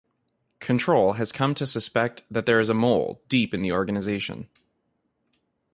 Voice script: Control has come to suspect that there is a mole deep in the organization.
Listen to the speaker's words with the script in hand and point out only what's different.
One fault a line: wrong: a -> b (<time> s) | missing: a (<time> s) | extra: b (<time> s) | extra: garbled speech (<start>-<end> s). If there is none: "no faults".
no faults